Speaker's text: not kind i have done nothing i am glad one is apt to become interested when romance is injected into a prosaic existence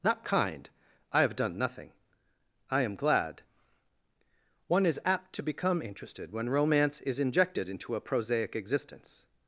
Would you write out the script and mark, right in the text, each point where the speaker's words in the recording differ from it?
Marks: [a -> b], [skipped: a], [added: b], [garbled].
not kind i have done nothing i am glad one is apt to become interested when romance is injected into a prosaic existence